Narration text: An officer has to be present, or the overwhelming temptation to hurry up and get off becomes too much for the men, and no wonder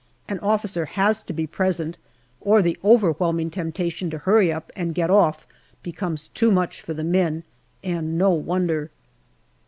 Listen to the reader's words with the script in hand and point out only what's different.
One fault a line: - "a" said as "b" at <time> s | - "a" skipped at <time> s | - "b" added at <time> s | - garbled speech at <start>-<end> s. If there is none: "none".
none